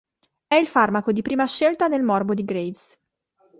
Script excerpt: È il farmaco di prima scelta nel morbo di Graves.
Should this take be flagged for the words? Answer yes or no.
no